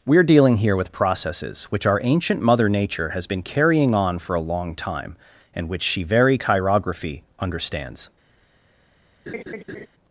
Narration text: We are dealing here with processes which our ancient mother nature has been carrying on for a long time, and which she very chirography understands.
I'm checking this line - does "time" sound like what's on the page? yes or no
yes